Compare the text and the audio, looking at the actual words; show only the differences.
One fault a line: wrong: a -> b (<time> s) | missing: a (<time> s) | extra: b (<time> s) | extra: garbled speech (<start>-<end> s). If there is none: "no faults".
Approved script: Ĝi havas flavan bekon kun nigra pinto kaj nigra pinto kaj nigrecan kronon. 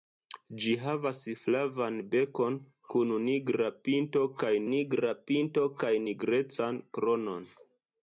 no faults